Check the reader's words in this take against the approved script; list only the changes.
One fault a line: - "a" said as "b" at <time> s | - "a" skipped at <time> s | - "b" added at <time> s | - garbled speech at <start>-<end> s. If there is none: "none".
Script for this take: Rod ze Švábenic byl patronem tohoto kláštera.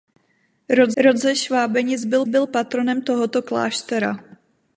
- "rod" added at 1.0 s
- "byl" added at 2.3 s